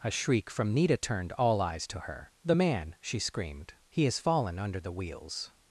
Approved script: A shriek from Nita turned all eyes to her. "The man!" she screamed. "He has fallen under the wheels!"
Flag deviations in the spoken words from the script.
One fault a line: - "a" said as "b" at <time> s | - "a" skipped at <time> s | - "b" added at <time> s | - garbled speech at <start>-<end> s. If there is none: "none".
none